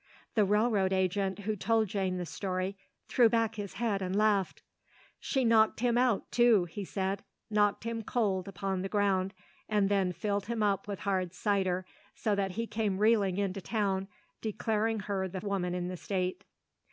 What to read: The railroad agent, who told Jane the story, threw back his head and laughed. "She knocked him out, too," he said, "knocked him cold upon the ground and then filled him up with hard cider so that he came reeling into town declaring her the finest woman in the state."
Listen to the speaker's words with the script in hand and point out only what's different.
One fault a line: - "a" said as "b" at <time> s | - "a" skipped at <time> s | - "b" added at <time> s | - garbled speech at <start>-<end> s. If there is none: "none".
- "finest" skipped at 15.4 s